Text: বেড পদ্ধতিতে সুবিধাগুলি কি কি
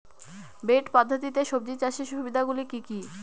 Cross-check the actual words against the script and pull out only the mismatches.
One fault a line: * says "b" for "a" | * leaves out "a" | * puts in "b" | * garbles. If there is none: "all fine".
* puts in "সবজি চাষের"